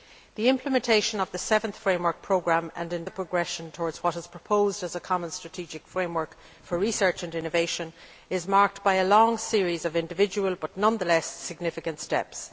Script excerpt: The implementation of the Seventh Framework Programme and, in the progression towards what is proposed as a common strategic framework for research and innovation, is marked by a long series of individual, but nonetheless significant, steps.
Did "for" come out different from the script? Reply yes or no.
no